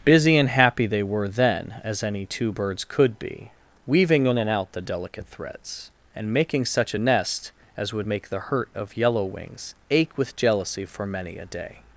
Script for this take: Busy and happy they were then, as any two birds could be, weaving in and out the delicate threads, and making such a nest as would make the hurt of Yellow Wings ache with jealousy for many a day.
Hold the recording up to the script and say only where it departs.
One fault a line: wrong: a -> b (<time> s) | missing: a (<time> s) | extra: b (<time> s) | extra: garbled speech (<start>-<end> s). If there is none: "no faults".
no faults